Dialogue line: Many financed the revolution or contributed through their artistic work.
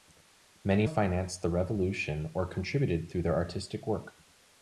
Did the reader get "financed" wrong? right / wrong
right